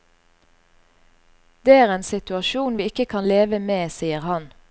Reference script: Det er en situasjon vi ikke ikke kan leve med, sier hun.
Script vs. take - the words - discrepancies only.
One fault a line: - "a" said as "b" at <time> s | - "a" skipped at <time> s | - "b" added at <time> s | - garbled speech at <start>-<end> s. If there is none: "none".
- "ikke" skipped at 3.1 s
- "hun" said as "han" at 4.2 s